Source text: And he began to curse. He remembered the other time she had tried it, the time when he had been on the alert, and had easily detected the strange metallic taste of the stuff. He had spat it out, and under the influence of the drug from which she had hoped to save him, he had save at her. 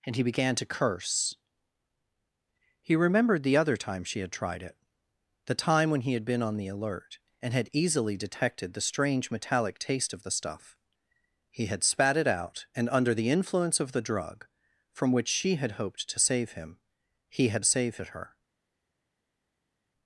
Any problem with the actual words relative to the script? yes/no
no